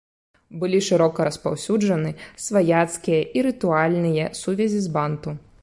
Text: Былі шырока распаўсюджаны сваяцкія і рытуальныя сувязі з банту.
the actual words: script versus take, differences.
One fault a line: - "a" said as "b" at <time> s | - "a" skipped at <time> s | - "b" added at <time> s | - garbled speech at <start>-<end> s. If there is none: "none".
none